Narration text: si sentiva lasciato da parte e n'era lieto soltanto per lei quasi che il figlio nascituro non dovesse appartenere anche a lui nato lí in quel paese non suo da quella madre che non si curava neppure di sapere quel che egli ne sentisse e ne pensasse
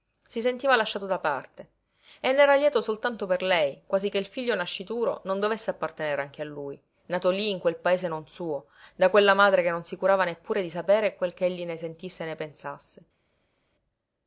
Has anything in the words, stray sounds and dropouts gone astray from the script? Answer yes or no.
no